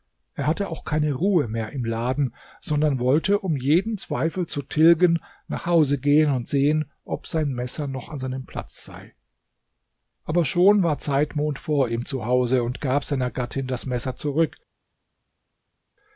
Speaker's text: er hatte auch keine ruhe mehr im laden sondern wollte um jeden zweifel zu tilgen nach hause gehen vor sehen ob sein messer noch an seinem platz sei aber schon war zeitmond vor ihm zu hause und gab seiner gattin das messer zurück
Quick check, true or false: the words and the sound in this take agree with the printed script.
false